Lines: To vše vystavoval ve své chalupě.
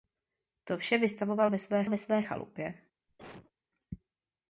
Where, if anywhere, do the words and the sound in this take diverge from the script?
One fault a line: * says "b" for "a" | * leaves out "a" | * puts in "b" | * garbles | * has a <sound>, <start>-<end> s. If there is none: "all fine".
* puts in "ve své"
* has a cough, 3.1-3.5 s